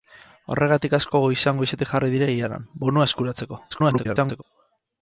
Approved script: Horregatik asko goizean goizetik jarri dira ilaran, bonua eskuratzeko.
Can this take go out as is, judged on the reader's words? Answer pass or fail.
fail